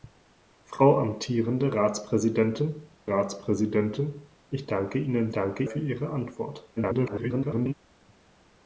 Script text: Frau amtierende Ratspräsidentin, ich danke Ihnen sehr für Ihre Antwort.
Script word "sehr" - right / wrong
wrong